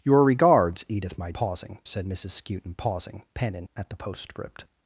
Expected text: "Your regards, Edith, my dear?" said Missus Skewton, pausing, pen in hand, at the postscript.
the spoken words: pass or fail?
fail